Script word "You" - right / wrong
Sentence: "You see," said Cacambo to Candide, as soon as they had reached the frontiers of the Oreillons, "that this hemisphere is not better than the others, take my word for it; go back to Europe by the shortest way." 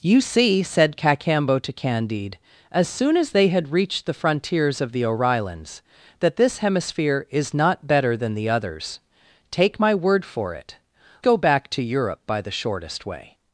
right